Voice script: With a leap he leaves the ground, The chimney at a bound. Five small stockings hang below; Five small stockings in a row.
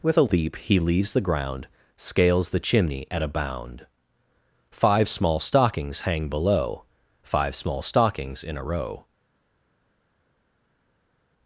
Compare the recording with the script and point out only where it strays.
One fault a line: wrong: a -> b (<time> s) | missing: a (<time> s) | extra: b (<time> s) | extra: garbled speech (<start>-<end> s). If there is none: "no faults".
extra: Scales (1.9 s)